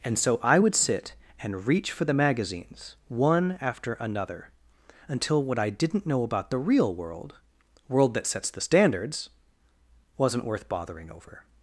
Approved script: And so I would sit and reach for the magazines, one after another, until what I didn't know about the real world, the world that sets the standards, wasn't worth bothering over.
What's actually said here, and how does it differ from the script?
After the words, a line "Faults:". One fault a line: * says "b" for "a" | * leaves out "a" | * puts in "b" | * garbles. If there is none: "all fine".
And so I would sit and reach for the magazines, one after another, until what I didn't know about the real world, world that sets the standards, wasn't worth bothering over.
Faults:
* leaves out "the"